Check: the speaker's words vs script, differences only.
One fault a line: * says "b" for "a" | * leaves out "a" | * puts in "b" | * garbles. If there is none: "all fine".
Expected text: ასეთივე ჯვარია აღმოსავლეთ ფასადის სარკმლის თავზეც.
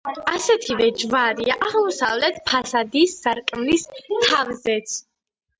all fine